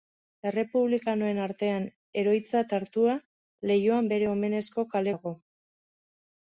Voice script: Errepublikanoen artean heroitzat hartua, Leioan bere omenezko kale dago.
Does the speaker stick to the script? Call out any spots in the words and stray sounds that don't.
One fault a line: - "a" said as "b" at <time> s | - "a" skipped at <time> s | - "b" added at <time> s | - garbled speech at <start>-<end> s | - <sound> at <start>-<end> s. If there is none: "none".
none